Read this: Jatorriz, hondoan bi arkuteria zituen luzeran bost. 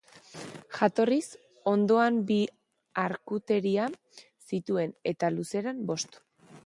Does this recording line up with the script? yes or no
no